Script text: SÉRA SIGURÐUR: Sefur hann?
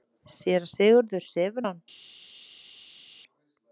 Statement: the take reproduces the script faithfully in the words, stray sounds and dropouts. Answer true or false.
true